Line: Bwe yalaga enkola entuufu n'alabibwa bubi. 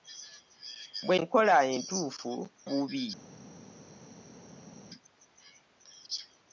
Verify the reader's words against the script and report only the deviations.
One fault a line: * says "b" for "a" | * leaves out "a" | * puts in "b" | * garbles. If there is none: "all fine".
* leaves out "yalaga"
* leaves out "n'alabibwa"